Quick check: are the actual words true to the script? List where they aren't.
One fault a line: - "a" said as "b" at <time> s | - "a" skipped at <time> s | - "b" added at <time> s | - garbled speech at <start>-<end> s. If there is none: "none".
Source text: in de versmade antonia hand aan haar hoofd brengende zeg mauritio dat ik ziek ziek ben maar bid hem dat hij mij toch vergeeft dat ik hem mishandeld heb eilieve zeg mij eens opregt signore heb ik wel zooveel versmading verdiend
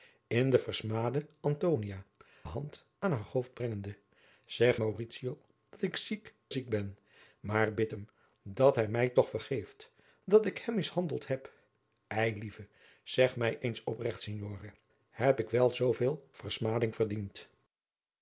none